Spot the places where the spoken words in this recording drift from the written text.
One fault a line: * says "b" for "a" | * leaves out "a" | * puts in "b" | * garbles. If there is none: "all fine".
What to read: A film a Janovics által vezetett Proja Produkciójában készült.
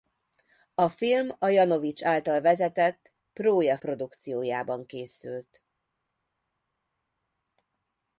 all fine